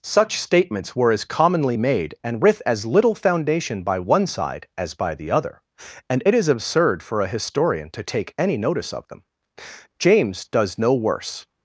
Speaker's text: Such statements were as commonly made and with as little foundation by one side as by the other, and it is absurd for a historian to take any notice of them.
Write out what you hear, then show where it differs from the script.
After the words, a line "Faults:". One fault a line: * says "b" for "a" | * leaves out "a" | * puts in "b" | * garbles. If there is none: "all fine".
Such statements were as commonly made and with as little foundation by one side as by the other, and it is absurd for a historian to take any notice of them. James does no worse
Faults:
* puts in "James does no worse"